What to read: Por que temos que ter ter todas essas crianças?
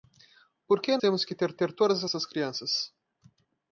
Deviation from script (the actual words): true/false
false